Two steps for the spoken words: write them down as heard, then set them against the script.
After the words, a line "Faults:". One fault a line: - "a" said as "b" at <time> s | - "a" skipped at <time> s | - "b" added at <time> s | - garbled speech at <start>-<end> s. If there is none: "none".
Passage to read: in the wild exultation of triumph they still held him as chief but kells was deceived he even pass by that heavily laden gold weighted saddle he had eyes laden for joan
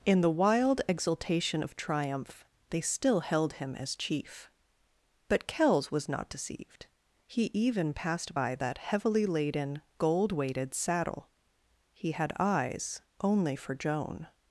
in the wild exultation of triumph they still held him as chief but kells was not deceived he even passed by that heavily laden gold weighted saddle he had eyes only for joan
Faults:
- "not" added at 6.1 s
- "pass" said as "passed" at 7.9 s
- "laden" said as "only" at 13.2 s